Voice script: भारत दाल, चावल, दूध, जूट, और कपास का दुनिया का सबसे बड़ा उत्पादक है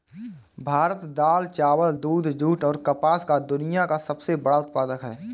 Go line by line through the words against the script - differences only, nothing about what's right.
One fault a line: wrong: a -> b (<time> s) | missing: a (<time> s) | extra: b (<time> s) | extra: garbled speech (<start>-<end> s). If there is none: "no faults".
no faults